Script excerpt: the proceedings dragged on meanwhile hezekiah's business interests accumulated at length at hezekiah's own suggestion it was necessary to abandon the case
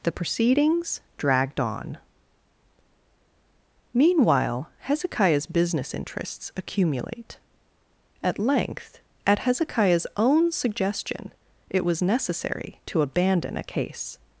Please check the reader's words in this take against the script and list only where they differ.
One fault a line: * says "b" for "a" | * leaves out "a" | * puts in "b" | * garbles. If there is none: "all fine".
* says "accumulate" for "accumulated"
* says "a" for "the"